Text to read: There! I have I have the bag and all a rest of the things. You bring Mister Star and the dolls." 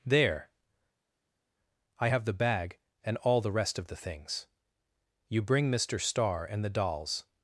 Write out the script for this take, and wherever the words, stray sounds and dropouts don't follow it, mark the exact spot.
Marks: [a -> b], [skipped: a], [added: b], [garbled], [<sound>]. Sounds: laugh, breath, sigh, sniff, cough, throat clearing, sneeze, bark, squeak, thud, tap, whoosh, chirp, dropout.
There! I have [skipped: I have] the bag and all [a -> the] rest of the things. You bring Mister Star and the dolls."